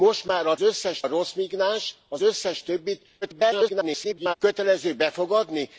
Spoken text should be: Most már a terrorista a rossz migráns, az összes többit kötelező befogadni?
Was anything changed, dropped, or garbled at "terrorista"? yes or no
yes